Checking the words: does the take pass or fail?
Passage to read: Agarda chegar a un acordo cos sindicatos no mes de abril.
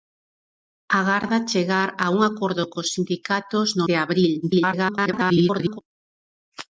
fail